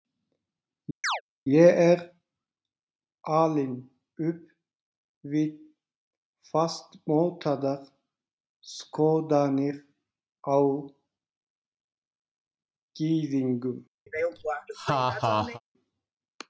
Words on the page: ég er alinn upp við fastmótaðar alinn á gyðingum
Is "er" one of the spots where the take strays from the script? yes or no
no